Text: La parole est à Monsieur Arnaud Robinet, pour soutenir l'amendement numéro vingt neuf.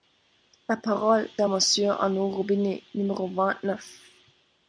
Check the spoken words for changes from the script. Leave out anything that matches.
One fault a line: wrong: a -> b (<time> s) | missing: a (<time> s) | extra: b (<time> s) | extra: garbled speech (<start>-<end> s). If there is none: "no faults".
missing: est (1.3 s)
missing: pour soutenir l'amendement (2.8 s)